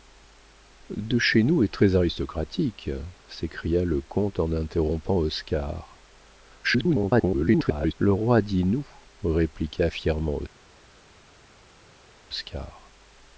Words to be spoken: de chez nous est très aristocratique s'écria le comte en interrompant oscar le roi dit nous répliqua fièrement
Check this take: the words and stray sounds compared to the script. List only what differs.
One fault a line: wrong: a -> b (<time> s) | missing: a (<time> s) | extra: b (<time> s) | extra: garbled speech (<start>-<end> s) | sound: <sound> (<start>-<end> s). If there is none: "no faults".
extra: garbled speech (6.6-7.9 s)